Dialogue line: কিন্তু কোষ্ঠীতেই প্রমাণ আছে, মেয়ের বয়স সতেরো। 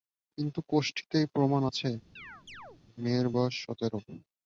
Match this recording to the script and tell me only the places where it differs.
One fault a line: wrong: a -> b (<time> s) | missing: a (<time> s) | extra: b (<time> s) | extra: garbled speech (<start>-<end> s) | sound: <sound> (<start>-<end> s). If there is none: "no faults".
sound: chirp (2.2-2.8 s)